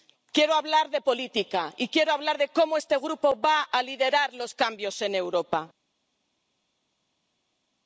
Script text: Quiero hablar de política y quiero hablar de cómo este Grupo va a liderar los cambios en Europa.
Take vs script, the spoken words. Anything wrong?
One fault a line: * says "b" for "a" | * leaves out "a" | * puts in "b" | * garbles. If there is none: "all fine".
all fine